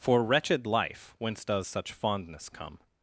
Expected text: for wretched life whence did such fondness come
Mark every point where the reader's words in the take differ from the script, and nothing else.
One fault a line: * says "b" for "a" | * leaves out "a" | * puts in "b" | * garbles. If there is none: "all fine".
* says "does" for "did"